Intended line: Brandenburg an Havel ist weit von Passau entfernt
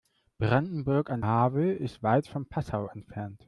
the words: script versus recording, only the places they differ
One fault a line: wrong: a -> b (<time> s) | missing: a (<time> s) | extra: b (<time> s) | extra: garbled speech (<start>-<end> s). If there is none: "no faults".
no faults